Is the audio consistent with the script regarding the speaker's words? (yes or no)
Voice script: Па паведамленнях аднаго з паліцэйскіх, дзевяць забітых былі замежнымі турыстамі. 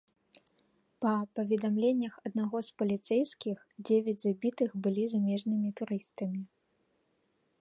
yes